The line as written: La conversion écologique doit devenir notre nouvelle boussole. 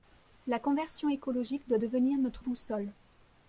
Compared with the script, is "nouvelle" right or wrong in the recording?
wrong